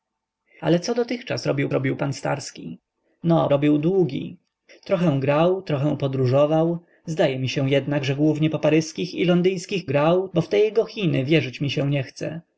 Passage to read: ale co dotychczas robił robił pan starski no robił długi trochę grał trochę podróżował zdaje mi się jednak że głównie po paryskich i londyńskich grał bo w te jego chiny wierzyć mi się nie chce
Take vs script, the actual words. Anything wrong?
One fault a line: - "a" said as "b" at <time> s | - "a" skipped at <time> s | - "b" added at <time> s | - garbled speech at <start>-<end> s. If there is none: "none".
none